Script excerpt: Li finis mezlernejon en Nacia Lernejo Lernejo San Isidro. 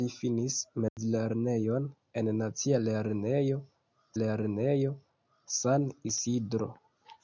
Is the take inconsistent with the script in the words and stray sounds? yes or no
yes